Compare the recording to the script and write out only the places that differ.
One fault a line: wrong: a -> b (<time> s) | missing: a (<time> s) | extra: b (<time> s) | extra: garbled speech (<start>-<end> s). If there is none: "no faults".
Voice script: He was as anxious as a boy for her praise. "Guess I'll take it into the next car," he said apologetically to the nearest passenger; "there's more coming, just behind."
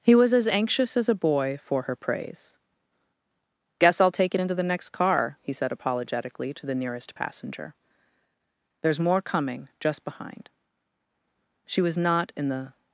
extra: She was not in the (11.6 s)